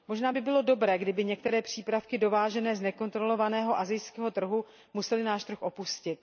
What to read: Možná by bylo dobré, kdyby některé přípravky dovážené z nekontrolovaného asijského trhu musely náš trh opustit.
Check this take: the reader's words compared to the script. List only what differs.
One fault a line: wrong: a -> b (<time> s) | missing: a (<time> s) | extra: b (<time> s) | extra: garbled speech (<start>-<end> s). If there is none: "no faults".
no faults